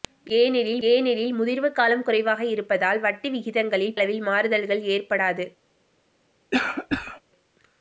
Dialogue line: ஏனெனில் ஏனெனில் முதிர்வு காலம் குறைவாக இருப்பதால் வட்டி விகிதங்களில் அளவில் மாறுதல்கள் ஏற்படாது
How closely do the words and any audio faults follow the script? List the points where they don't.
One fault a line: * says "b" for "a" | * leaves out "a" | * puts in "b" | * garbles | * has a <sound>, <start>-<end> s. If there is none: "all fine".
* has a cough, 6.5-7.2 s